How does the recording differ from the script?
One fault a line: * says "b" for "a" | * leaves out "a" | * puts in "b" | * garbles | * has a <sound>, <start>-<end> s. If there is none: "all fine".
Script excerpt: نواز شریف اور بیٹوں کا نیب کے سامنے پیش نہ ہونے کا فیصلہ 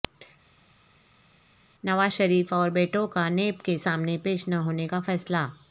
all fine